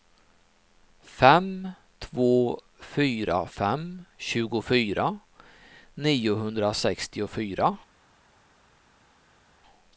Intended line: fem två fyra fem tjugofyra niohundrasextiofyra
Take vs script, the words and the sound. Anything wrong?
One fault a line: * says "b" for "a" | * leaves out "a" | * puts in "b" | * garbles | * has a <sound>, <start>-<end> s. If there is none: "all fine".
all fine